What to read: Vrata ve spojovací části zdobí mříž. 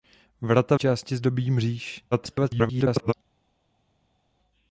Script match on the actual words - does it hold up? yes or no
no